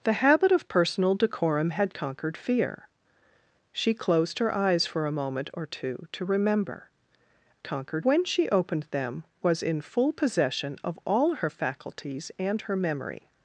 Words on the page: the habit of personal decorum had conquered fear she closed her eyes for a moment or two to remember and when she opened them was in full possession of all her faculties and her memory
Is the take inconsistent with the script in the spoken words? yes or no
yes